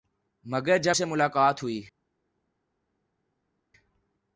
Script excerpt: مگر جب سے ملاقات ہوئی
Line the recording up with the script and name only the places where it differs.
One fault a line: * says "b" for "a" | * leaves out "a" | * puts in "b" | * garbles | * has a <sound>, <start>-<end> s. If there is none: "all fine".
all fine